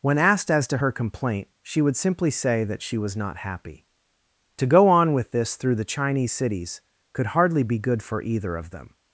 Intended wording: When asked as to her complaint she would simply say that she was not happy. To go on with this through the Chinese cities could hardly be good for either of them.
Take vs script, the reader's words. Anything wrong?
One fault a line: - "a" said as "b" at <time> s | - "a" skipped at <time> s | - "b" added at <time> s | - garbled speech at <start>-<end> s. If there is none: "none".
none